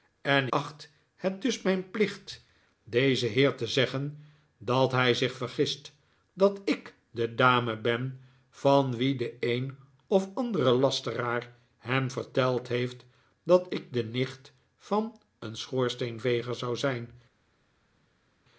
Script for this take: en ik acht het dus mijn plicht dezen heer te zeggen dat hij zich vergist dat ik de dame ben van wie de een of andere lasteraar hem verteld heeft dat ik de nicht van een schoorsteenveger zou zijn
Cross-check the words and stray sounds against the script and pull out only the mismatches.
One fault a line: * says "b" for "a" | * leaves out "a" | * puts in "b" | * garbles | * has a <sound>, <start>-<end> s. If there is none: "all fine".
* leaves out "ik"